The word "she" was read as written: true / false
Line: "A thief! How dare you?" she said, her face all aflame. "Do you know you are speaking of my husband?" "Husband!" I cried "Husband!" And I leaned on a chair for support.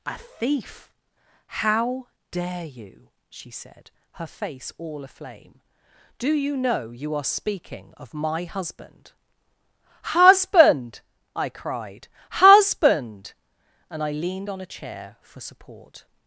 true